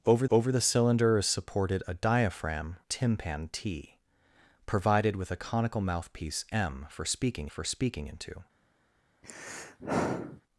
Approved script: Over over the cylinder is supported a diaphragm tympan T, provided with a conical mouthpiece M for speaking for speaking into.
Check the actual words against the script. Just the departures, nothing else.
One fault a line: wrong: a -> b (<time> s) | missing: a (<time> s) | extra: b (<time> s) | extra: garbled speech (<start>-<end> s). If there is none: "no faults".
no faults